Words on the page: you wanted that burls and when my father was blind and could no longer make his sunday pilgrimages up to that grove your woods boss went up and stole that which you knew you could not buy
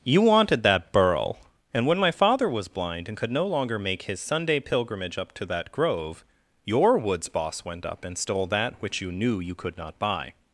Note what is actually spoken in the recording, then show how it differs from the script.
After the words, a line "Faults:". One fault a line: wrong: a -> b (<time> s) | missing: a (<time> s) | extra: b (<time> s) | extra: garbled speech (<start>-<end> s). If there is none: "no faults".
you wanted that burl and when my father was blind and could no longer make his sunday pilgrimage up to that grove your woods boss went up and stole that which you knew you could not buy
Faults:
wrong: burls -> burl (0.9 s)
wrong: pilgrimages -> pilgrimage (4.6 s)